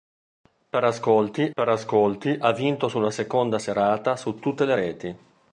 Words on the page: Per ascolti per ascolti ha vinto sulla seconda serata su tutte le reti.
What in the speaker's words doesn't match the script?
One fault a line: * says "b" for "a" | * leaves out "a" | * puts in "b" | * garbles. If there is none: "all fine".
all fine